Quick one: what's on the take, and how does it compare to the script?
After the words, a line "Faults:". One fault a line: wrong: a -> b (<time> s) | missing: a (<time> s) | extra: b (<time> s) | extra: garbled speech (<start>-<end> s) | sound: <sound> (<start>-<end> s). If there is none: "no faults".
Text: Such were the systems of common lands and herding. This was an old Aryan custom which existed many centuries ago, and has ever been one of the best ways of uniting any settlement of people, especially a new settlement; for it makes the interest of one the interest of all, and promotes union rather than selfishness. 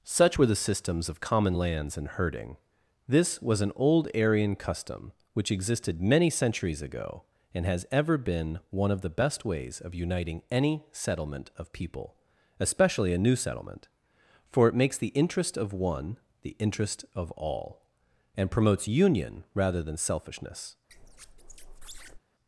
Such were the systems of common lands and herding. This was an old Aryan custom which existed many centuries ago, and has ever been one of the best ways of uniting any settlement of people, especially a new settlement; for it makes the interest of one the interest of all, and promotes union rather than selfishness.
Faults:
sound: squeak (20.9-22.2 s)